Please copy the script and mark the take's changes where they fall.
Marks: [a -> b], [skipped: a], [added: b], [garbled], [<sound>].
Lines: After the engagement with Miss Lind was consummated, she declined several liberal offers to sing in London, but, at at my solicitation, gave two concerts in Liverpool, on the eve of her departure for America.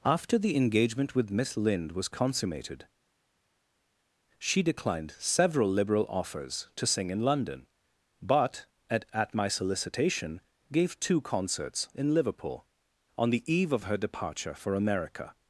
After the engagement with Miss Lind was consummated, she declined several liberal offers to sing in London, but, at at my solicitation, gave two concerts in Liverpool, on the eve of her departure for America.